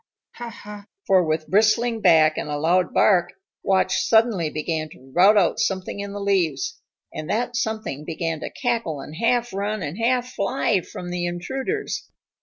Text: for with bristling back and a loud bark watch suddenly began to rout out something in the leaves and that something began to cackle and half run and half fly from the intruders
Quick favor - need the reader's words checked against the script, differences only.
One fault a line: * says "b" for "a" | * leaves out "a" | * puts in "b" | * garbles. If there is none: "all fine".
all fine